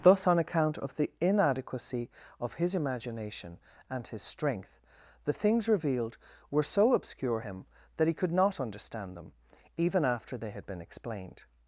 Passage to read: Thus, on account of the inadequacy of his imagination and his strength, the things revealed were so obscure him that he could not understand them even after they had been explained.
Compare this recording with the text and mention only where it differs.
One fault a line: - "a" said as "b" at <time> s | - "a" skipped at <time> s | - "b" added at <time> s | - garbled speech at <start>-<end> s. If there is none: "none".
none